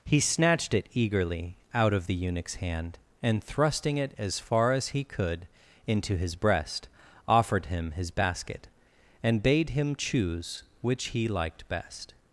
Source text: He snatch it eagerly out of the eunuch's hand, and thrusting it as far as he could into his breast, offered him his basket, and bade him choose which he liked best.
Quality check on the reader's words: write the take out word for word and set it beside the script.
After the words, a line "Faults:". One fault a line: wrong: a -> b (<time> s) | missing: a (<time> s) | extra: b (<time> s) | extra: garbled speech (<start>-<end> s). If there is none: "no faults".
He snatched it eagerly out of the eunuch's hand, and thrusting it as far as he could into his breast, offered him his basket, and bade him choose which he liked best.
Faults:
wrong: snatch -> snatched (0.2 s)